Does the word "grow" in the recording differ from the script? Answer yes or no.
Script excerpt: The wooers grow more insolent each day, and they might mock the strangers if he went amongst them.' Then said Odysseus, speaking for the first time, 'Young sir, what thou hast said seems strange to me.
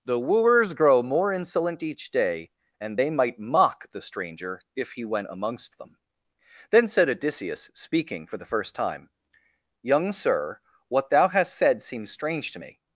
no